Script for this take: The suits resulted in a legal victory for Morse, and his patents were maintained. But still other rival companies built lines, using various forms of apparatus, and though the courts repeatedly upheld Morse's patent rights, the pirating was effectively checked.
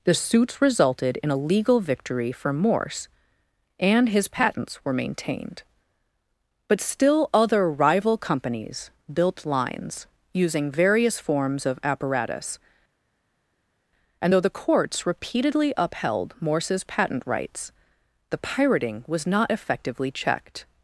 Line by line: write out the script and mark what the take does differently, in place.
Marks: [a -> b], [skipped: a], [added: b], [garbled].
The suits resulted in a legal victory for Morse, and his patents were maintained. But still other rival companies built lines, using various forms of apparatus, and though the courts repeatedly upheld Morse's patent rights, the pirating was [added: not] effectively checked.